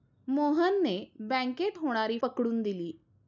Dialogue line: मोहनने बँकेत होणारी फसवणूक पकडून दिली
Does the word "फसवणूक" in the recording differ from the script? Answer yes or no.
yes